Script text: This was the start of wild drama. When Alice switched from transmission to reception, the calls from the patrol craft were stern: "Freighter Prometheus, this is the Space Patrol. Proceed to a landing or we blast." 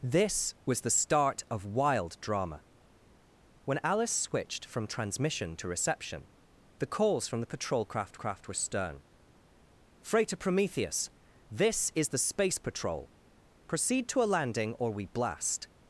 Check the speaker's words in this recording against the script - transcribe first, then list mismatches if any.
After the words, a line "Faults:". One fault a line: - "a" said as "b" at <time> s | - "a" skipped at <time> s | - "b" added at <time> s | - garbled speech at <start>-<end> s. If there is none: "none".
This was the start of wild drama. When Alice switched from transmission to reception, the calls from the patrol craft craft were stern: "Freighter Prometheus, this is the Space Patrol. Proceed to a landing or we blast."
Faults:
- "craft" added at 8.1 s